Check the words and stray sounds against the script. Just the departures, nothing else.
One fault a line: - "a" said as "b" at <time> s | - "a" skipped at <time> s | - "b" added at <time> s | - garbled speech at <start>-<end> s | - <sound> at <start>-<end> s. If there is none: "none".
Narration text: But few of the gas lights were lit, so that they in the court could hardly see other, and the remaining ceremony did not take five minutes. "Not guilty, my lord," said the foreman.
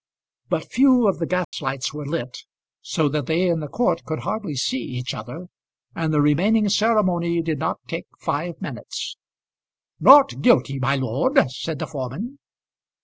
- dropout at 1.4-1.5 s
- "each" added at 4.8 s